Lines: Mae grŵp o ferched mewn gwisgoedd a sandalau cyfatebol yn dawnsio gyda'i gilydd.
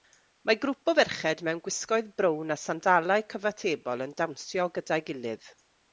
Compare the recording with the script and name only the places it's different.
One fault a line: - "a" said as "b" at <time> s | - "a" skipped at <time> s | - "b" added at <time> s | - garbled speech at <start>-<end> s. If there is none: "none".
- "brown" added at 2.2 s